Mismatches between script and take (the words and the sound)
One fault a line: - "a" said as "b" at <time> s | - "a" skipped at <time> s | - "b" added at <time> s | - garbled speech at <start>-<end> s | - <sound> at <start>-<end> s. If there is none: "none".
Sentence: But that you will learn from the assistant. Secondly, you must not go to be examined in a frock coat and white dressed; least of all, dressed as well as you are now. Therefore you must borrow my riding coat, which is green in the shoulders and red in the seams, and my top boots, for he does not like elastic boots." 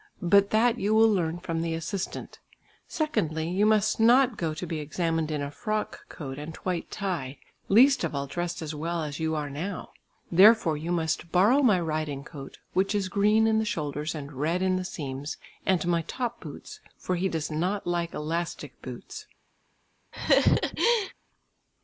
- "dressed" said as "tie" at 6.9 s
- laugh at 20.1-21.1 s